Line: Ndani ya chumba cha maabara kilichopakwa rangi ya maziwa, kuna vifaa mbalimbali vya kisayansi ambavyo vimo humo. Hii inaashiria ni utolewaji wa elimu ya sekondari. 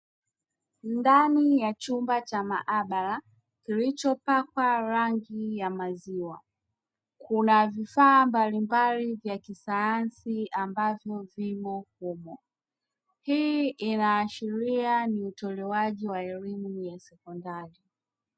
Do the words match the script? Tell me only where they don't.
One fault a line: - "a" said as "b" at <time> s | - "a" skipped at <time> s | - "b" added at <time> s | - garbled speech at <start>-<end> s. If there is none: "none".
none